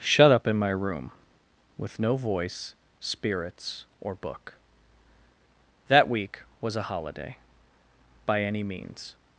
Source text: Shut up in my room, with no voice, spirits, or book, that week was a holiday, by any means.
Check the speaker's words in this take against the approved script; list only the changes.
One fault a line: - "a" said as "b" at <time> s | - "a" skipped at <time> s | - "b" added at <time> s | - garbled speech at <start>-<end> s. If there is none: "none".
none